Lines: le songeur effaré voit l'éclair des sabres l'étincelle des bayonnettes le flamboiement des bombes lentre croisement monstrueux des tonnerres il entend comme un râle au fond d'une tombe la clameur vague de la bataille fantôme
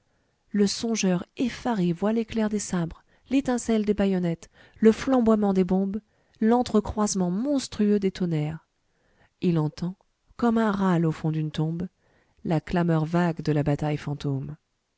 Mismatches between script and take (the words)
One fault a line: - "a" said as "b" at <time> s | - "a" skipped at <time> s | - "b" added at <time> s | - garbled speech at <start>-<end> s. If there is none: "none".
none